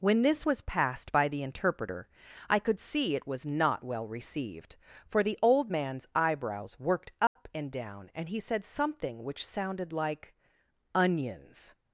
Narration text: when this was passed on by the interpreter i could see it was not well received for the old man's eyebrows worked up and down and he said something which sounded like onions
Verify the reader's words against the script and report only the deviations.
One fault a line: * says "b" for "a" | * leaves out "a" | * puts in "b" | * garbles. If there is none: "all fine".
* leaves out "on"